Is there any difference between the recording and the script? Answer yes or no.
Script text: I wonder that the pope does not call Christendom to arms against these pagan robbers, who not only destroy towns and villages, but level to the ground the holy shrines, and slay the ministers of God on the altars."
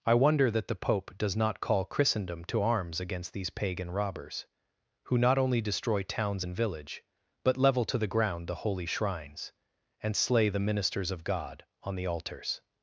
yes